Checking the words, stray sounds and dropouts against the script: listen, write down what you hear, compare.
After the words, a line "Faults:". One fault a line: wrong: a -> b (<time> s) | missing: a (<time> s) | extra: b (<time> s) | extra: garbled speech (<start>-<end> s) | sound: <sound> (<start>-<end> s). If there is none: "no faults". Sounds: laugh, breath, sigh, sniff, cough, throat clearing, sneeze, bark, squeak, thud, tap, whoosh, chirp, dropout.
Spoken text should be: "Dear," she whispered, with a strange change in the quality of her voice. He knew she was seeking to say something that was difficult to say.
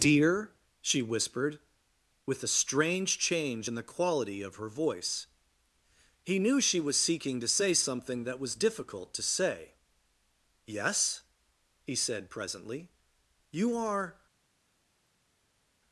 "Dear," she whispered, with a strange change in the quality of her voice. He knew she was seeking to say something that was difficult to say. "Yes?" he said presently. "You are
Faults:
extra: Yes he said presently You are (10.6 s)